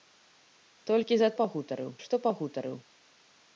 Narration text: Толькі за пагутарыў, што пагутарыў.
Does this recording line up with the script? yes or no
yes